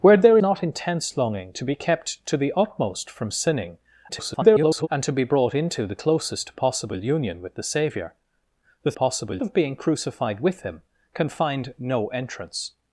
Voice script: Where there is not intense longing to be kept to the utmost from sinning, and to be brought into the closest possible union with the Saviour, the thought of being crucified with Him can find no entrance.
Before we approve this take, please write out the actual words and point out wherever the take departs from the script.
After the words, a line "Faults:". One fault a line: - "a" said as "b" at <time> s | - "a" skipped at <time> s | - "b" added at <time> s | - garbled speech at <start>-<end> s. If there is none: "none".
Where there not intense longing to be kept to the utmost from sinning, [garbled] and to be brought into the closest possible union with the Saviour, the possible of being crucified with Him can find no entrance.
Faults:
- "is" skipped at 0.4 s
- garbled speech at 4.1-4.9 s
- "thought" said as "possible" at 8.9 s